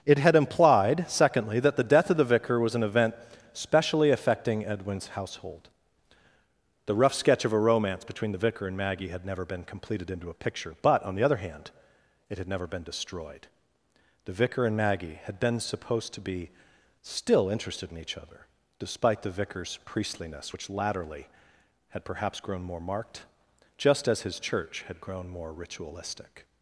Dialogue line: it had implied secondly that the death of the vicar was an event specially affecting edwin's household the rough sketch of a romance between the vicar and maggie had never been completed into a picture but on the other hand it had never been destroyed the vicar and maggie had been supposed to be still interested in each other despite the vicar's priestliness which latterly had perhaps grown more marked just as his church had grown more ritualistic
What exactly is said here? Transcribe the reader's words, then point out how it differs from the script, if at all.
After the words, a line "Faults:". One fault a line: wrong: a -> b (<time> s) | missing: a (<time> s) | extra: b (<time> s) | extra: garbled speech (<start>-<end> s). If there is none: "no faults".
it had implied secondly that the death of the vicar was an event specially affecting edwin's household the rough sketch of a romance between the vicar and maggie had never been completed into a picture but on the other hand it had never been destroyed the vicar and maggie had been supposed to be still interested in each other despite the vicar's priestliness which latterly had perhaps grown more marked just as his church had grown more ritualistic
Faults:
no faults